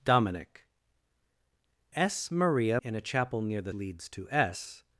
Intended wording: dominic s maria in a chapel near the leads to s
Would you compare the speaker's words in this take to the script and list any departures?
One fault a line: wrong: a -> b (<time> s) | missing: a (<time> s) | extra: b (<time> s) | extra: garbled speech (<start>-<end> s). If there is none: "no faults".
no faults